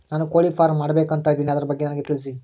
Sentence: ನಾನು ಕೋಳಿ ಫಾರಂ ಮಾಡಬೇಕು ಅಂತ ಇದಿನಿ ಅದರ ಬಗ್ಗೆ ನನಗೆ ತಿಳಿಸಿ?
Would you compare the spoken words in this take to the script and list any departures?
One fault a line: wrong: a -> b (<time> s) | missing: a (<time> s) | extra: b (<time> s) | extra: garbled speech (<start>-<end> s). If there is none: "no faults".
no faults